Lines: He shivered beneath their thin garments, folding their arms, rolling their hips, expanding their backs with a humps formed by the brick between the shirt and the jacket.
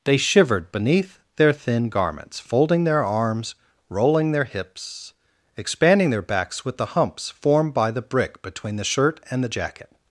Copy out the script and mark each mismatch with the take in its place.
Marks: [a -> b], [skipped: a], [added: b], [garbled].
[He -> They] shivered beneath their thin garments, folding their arms, rolling their hips, expanding their backs with [a -> the] humps formed by the brick between the shirt and the jacket.